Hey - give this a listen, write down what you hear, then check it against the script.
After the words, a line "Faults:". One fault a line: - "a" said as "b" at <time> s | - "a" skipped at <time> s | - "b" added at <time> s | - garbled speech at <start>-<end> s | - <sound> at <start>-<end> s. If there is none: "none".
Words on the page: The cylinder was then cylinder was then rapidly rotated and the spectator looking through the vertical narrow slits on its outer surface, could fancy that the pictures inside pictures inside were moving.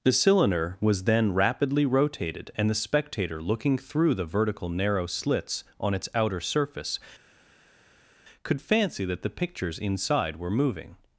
The cylinder was then rapidly rotated and the spectator looking through the vertical narrow slits on its outer surface, could fancy that the pictures inside were moving.
Faults:
- "cylinder was then" skipped at 1.3 s
- "pictures inside" skipped at 10.4 s